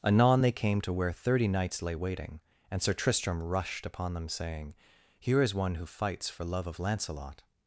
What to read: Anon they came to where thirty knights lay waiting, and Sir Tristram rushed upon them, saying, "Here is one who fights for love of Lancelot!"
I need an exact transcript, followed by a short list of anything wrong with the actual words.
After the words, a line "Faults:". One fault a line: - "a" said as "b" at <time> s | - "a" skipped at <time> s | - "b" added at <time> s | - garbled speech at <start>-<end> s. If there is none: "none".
Anon they came to where thirty knights lay waiting, and Sir Tristram rushed upon them, saying, "Here is one who fights for love of Lancelot!"
Faults:
none